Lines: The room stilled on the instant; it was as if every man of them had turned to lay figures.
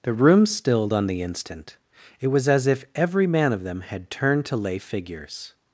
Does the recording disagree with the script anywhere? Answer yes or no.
no